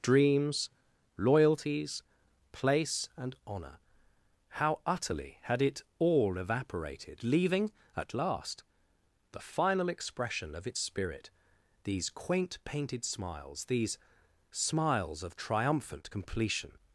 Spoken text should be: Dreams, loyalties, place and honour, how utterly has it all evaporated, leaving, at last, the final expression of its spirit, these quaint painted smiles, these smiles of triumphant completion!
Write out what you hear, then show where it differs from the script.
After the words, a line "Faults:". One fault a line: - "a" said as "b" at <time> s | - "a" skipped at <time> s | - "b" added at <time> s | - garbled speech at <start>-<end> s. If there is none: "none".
Dreams, loyalties, place and honour, how utterly had it all evaporated, leaving, at last, the final expression of its spirit, these quaint painted smiles, these smiles of triumphant completion!
Faults:
- "has" said as "had" at 5.4 s